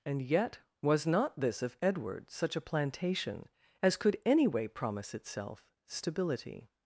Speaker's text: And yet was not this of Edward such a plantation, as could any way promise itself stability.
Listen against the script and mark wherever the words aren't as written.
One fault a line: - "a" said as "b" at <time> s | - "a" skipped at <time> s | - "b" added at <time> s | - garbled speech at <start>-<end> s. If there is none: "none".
none